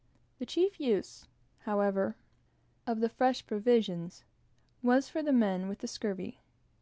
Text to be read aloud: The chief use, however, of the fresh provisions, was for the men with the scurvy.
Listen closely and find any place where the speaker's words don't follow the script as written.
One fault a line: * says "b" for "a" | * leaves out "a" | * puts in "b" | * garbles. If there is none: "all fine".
all fine